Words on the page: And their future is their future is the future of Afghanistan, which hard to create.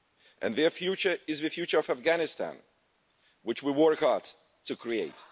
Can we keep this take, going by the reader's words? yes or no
no